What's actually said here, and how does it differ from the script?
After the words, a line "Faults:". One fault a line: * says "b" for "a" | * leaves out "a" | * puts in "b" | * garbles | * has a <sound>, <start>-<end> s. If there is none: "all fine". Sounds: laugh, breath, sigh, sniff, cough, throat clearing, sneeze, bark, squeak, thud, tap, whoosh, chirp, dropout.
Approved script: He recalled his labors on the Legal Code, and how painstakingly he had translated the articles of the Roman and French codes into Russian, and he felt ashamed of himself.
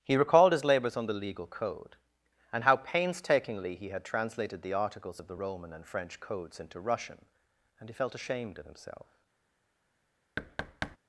He recalled his labors on the Legal Code, and how painstakingly he had translated the articles of the Roman and French codes into Russian, and he felt ashamed of himself.
Faults:
* has a thud, 10.4-11.0 s